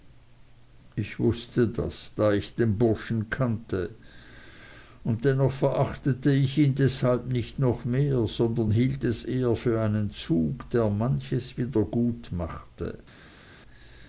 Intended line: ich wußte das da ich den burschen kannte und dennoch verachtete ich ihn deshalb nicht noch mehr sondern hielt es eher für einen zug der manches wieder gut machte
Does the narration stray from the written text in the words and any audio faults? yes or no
no